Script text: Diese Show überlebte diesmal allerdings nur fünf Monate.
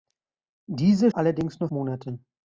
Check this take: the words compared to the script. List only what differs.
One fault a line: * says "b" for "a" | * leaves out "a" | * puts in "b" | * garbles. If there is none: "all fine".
* leaves out "Show überlebte diesmal"
* leaves out "fünf"